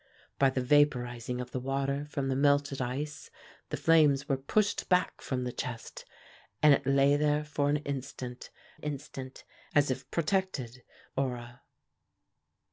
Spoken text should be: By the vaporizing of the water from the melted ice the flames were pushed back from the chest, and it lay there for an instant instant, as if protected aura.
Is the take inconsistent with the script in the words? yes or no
no